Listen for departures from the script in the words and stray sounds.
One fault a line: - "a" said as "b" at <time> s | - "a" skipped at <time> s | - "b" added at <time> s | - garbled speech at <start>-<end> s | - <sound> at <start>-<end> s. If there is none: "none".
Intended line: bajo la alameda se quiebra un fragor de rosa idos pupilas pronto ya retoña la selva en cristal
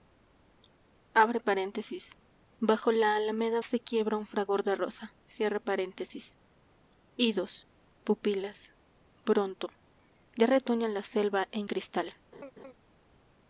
- laugh at 12.3-12.7 s